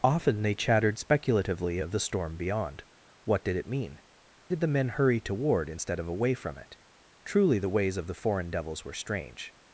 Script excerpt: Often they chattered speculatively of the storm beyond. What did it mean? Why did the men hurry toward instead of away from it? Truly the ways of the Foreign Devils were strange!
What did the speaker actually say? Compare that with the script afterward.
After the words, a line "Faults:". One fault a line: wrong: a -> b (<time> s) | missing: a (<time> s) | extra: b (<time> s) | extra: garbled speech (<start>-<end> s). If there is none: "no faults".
Often they chattered speculatively of the storm beyond. What did it mean? Did the men hurry toward instead of away from it? Truly the ways of the Foreign Devils were strange!
Faults:
missing: Why (4.0 s)